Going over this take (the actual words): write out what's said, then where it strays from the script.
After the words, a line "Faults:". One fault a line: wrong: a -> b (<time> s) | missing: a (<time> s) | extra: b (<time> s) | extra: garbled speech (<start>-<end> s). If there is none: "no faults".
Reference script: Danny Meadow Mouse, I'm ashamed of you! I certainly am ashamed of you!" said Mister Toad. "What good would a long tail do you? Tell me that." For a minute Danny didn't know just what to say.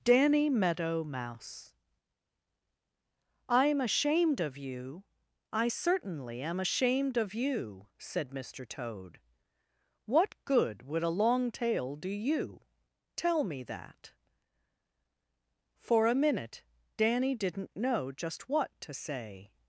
Danny Meadow Mouse, I'm ashamed of you! I certainly am ashamed of you!" said Mister Toad. "What good would a long tail do you? Tell me that." For a minute Danny didn't know just what to say.
Faults:
no faults